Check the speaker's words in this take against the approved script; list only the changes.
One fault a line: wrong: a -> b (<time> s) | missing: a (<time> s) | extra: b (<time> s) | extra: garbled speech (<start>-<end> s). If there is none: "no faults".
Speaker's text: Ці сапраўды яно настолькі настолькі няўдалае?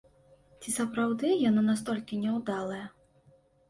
missing: настолькі (2.2 s)